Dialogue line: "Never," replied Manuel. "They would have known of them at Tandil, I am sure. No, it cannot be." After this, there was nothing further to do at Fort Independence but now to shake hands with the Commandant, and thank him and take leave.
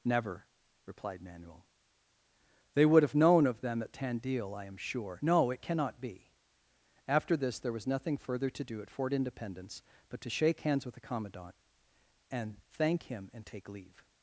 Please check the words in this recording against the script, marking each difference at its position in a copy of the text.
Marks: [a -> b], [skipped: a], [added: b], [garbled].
"Never," replied Manuel. "They would have known of them at Tandil, I am sure. No, it cannot be." After this, there was nothing further to do at Fort Independence but [skipped: now] to shake hands with the Commandant, and thank him and take leave.